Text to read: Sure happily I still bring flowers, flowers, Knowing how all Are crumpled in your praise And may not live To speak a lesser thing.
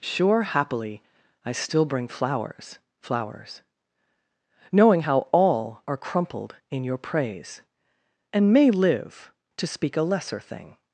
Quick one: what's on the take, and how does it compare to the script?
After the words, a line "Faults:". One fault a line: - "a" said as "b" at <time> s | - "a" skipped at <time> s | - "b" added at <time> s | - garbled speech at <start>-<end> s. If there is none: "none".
Sure happily I still bring flowers, flowers, Knowing how all Are crumpled in your praise And may live To speak a lesser thing.
Faults:
- "not" skipped at 8.7 s